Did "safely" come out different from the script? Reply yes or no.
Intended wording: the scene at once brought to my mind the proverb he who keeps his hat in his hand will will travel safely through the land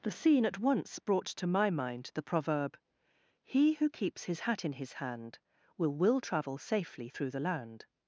no